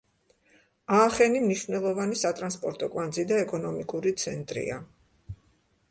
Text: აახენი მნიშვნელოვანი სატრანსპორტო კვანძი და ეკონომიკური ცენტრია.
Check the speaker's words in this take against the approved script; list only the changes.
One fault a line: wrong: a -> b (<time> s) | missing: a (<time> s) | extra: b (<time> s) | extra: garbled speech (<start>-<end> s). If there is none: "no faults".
no faults